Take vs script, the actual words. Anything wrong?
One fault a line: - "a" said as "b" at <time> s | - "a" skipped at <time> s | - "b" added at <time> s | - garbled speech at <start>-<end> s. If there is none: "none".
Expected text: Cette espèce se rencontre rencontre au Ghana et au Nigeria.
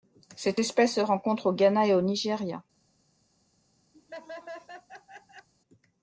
- "rencontre" skipped at 1.5 s